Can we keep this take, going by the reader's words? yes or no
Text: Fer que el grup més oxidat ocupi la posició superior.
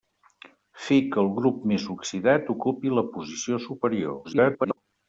no